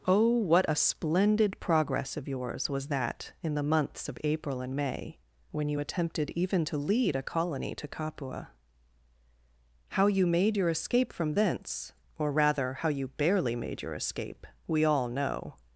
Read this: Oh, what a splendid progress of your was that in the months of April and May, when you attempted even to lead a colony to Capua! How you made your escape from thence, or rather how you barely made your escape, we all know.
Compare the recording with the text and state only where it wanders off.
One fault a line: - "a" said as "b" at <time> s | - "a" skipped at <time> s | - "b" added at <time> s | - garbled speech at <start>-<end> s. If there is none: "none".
- "your" said as "yours" at 2.3 s